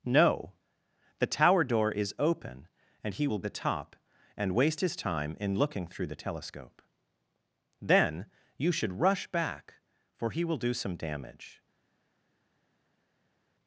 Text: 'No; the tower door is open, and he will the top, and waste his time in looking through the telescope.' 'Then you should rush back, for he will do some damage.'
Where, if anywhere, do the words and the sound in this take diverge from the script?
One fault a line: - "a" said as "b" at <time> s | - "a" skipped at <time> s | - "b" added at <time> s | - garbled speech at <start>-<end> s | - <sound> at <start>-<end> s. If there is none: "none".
none